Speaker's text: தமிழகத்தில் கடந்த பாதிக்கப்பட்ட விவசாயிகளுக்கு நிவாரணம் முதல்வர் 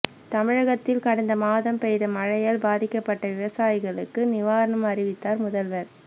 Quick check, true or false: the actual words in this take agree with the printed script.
false